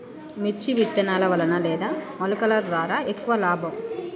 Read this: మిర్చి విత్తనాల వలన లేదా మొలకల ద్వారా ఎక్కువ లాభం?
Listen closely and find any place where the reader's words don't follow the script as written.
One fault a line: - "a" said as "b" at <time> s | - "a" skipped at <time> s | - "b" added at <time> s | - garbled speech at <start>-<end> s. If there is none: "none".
none